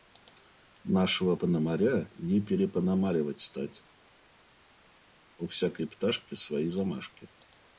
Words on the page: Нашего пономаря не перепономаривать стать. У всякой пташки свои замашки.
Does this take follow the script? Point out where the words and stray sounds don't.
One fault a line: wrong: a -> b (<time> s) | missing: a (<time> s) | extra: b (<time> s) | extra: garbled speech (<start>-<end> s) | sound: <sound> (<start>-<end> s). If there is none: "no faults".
no faults